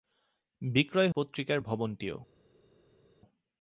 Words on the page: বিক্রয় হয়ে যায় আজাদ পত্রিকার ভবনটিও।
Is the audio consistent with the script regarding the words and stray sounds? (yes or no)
no